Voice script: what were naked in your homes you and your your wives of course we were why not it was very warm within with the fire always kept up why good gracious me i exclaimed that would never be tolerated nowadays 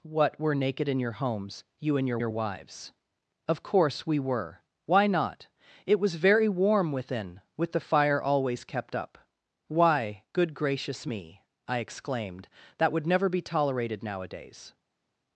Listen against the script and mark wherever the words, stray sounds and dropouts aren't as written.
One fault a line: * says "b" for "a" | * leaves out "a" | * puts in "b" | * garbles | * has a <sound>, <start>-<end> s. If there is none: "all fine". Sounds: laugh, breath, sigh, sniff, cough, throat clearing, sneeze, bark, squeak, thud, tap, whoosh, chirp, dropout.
all fine